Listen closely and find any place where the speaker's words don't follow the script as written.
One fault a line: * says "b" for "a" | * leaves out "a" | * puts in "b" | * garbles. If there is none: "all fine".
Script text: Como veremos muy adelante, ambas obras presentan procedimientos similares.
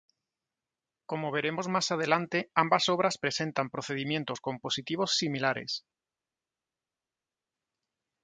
* says "más" for "muy"
* puts in "compositivos"